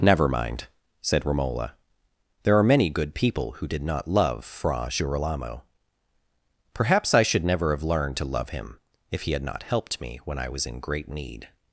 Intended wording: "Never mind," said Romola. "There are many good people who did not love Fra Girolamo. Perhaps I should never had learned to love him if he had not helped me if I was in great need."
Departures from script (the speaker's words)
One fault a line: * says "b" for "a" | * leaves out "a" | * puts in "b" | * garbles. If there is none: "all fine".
* says "have" for "had"
* says "when" for "if"